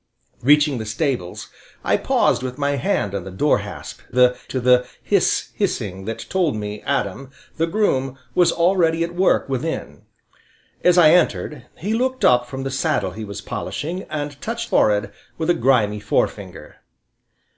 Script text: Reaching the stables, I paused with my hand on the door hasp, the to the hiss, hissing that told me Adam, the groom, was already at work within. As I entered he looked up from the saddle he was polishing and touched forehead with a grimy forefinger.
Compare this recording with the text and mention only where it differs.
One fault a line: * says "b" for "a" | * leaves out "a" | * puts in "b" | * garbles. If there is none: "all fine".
all fine